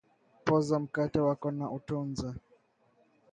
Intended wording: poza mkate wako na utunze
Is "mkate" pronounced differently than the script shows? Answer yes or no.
no